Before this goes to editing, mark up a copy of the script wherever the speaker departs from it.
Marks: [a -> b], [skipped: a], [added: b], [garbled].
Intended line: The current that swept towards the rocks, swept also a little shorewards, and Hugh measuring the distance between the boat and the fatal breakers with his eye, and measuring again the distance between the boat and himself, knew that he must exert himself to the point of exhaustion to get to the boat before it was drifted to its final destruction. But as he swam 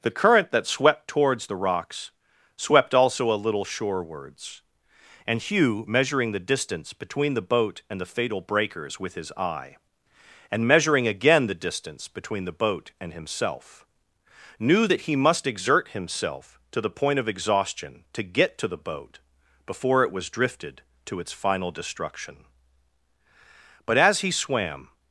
The current that swept towards the rocks, swept also a little shorewards, and Hugh measuring the distance between the boat and the fatal breakers with his eye, and measuring again the distance between the boat and himself, knew that he must exert himself to the point of exhaustion to get to the boat before it was drifted to its final destruction. But as he swam